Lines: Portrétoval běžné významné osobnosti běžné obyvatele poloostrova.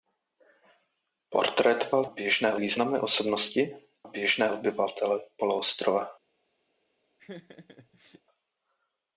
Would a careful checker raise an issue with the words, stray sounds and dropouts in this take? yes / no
yes